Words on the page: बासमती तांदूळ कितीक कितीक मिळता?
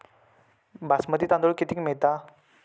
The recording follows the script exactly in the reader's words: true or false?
false